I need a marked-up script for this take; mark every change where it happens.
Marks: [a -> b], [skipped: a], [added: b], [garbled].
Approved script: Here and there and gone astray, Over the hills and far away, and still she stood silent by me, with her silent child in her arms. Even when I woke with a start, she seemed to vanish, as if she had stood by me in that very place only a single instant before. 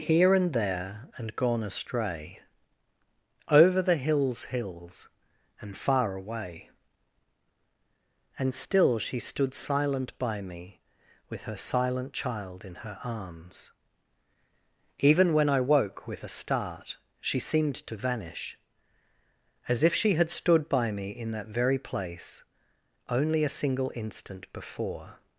Here and there and gone astray, Over the hills [added: hills] and far away, and still she stood silent by me, with her silent child in her arms. Even when I woke with a start, she seemed to vanish, as if she had stood by me in that very place only a single instant before.